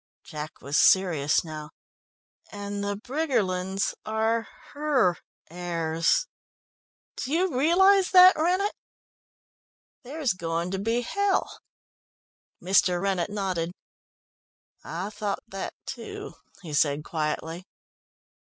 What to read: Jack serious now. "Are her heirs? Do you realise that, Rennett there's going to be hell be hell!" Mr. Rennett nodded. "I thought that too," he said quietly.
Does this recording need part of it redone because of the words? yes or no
yes